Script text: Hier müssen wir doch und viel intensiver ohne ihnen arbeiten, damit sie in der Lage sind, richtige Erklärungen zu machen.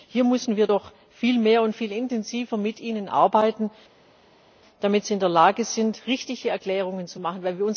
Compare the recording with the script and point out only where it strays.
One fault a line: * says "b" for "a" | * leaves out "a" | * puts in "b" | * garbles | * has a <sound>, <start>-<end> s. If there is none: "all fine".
* puts in "viel mehr"
* says "mit" for "ohne"